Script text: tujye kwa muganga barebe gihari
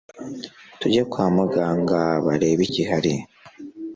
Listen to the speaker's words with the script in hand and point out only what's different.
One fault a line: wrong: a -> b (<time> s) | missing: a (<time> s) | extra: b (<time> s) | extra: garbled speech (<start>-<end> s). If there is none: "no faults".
no faults